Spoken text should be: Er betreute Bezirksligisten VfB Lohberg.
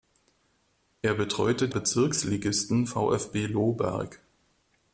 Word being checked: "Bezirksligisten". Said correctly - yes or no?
yes